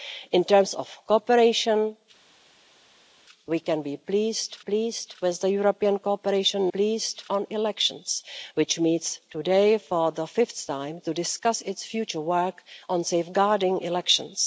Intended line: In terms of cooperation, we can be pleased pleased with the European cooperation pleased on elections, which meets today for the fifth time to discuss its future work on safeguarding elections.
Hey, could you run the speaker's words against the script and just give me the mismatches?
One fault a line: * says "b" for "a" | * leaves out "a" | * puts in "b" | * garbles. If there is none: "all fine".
all fine